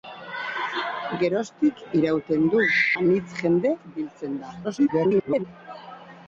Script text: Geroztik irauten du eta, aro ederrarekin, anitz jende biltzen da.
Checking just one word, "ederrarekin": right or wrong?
wrong